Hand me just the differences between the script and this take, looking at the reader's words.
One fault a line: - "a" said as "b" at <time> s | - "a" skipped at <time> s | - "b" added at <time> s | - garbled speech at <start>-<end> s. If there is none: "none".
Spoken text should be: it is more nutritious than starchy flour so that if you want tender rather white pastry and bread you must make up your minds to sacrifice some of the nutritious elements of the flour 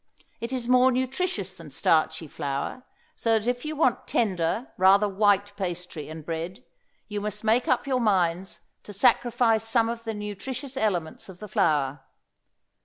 none